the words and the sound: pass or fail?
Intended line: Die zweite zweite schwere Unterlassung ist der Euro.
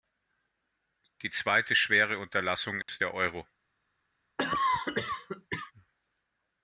fail